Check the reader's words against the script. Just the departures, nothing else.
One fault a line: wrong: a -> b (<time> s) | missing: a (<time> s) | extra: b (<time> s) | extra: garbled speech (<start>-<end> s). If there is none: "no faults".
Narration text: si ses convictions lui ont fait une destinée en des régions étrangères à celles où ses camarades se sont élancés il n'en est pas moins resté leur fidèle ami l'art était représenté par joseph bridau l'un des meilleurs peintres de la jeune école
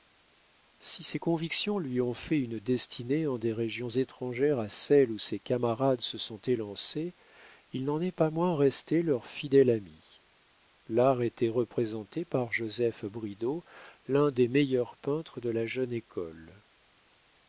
no faults